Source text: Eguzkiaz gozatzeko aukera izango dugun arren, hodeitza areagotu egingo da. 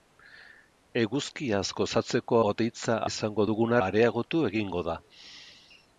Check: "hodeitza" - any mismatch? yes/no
yes